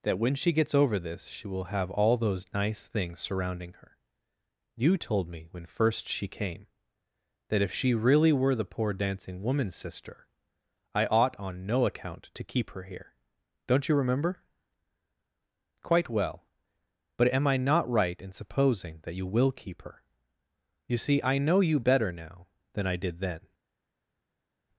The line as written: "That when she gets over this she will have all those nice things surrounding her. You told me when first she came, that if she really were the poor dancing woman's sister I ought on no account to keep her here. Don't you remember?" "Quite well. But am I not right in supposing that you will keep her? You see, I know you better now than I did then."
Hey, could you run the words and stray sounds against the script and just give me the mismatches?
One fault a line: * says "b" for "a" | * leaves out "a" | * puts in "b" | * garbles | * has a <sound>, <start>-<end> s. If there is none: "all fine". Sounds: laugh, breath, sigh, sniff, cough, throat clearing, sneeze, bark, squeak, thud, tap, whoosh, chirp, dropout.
all fine